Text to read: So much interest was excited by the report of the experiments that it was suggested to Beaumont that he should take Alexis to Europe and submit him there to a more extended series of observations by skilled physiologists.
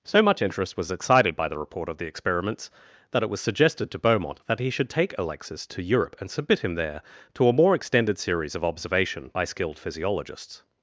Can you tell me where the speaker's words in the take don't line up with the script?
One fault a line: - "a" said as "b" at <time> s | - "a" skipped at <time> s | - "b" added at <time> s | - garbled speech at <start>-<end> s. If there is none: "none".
- "observations" said as "observation" at 8.6 s